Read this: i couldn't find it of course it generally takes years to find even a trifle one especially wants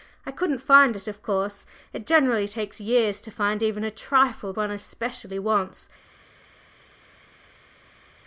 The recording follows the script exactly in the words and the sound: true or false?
true